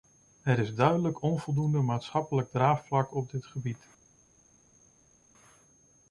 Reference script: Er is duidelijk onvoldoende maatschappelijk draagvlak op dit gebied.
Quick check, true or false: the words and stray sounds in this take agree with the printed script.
true